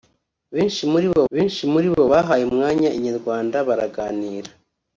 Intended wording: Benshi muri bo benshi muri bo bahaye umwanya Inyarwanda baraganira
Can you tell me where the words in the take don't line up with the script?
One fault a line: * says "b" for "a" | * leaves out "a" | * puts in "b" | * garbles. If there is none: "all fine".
all fine